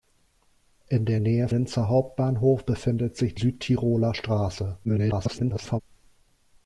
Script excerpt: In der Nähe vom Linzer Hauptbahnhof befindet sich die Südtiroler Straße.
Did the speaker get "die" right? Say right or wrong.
wrong